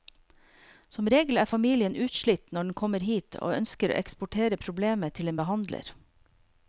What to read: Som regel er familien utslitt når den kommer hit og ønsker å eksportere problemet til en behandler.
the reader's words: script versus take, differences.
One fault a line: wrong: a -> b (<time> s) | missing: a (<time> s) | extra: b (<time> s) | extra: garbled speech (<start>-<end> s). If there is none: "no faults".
no faults